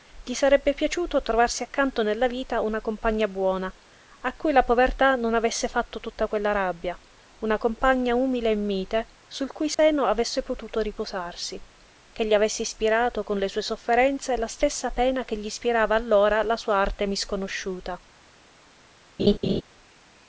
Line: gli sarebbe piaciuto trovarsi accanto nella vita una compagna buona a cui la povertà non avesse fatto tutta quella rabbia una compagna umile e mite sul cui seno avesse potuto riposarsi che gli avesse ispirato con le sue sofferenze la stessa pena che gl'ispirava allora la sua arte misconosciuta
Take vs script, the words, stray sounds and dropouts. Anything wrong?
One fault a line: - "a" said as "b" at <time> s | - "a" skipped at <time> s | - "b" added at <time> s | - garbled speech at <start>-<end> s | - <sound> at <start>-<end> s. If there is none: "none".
- dropout at 9.7-9.8 s
- laugh at 19.2-19.6 s